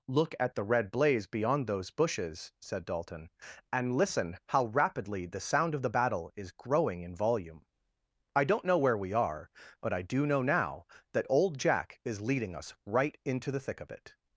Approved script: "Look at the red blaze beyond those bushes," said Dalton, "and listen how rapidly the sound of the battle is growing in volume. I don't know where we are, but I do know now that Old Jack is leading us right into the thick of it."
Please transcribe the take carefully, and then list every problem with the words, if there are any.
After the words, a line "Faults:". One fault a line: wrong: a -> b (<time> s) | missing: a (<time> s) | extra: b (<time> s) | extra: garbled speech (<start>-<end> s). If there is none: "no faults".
"Look at the red blaze beyond those bushes," said Dalton, "and listen how rapidly the sound of the battle is growing in volume. I don't know where we are, but I do know now that Old Jack is leading us right into the thick of it."
Faults:
no faults